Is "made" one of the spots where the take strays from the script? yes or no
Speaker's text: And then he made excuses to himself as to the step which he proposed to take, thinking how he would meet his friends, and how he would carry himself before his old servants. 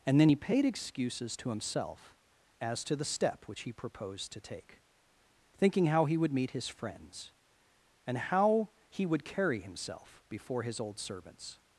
yes